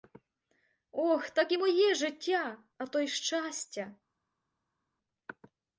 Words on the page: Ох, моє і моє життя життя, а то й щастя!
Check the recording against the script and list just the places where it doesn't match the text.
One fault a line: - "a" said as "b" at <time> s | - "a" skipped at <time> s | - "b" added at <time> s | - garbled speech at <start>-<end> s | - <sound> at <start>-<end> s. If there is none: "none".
- "моє" said as "так" at 1.3 s
- "життя" skipped at 2.6 s